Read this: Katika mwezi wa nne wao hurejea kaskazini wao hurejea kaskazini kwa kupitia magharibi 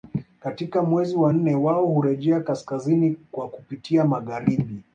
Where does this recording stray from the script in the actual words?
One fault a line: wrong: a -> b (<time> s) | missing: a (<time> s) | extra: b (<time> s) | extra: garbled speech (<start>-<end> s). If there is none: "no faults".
missing: wao hurejea kaskazini (3.2 s)